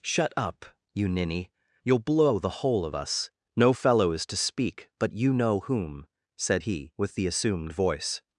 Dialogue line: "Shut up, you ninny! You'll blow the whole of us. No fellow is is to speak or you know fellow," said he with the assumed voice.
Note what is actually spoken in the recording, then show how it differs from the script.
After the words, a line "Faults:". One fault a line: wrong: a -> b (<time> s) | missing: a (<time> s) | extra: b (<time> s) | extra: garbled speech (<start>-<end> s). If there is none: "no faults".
"Shut up, you ninny! You'll blow the whole of us. No fellow is to speak but you know whom," said he with the assumed voice.
Faults:
missing: is (4.3 s)
wrong: or -> but (5.0 s)
wrong: fellow -> whom (5.6 s)